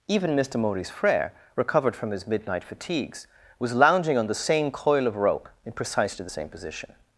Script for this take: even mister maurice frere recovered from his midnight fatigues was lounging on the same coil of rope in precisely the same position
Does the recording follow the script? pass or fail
pass